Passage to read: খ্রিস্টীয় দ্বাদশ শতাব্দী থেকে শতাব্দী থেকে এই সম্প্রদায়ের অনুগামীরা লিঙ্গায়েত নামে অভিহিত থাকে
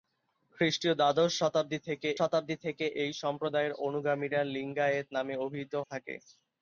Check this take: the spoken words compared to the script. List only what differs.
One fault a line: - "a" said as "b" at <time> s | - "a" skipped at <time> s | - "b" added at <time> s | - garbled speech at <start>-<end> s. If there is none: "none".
none